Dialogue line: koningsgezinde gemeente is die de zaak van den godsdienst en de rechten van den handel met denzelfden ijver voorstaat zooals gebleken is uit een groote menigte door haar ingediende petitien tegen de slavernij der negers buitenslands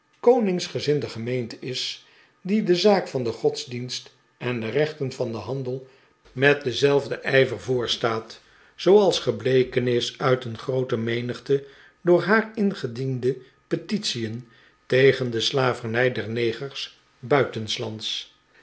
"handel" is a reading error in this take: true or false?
false